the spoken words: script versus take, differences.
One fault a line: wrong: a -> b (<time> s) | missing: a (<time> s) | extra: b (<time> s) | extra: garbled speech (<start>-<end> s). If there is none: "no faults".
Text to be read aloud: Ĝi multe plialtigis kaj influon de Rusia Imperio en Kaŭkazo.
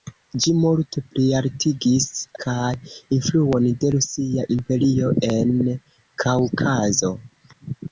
no faults